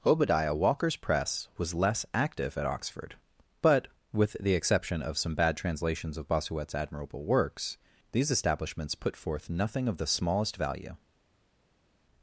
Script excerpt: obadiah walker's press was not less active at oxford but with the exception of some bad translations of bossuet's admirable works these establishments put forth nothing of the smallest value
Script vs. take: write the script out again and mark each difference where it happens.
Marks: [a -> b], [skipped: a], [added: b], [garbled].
obadiah walker's press was [skipped: not] less active at oxford but with the exception of some bad translations of bossuet's admirable works these establishments put forth nothing of the smallest value